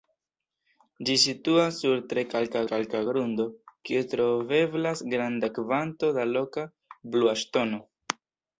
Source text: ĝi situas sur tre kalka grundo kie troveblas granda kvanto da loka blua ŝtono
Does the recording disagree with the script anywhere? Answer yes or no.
yes